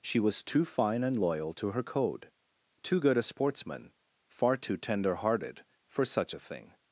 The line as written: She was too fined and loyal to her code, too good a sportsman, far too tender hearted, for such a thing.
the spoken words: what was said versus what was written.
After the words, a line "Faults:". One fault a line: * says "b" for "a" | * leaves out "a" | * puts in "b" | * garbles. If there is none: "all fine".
She was too fine and loyal to her code, too good a sportsman, far too tender hearted, for such a thing.
Faults:
* says "fine" for "fined"